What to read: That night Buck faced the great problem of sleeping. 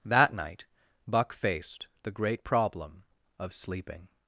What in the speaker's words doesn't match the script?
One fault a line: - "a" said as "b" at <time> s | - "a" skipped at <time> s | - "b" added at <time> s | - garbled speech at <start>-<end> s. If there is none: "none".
none